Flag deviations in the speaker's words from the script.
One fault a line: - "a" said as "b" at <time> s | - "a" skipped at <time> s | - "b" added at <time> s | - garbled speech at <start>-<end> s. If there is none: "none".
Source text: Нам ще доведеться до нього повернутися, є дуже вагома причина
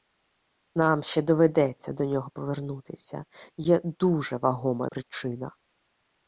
none